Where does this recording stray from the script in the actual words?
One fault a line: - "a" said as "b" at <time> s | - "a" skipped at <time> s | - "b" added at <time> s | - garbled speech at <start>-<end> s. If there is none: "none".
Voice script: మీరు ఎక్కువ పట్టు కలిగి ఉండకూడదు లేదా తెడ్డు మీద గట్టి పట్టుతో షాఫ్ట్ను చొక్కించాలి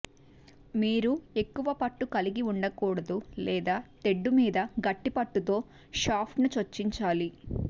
none